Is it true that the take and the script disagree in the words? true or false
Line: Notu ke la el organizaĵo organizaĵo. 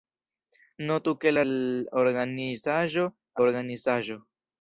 false